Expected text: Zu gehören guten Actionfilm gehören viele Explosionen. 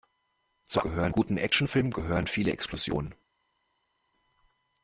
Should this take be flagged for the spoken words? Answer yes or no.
no